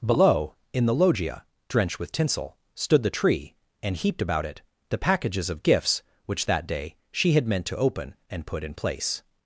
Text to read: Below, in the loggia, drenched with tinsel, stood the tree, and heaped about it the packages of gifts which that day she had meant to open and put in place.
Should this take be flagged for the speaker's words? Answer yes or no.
no